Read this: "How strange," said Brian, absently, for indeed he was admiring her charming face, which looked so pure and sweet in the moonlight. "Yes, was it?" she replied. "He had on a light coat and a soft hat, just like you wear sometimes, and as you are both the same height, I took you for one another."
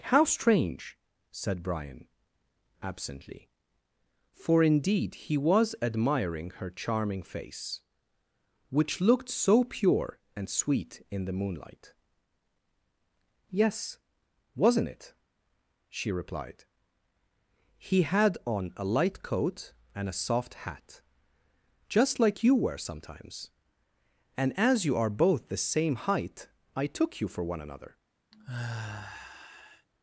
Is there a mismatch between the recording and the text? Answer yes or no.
yes